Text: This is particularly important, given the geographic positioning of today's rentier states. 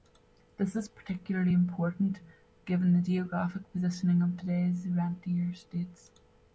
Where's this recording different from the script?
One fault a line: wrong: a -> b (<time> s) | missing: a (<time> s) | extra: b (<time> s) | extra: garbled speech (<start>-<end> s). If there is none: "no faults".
no faults